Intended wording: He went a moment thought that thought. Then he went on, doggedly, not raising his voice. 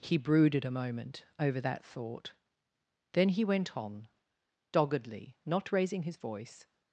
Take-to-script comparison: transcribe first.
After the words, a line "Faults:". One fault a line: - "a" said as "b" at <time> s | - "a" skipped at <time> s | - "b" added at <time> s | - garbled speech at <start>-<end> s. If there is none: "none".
He brooded a moment over that thought. Then he went on, doggedly, not raising his voice.
Faults:
- "went" said as "brooded" at 0.2 s
- "thought" said as "over" at 1.4 s